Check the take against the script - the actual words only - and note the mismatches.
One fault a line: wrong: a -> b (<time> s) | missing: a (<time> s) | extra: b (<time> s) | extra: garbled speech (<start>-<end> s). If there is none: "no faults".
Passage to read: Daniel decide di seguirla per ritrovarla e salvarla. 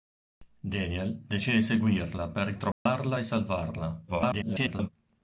extra: garbled speech (4.1-4.9 s)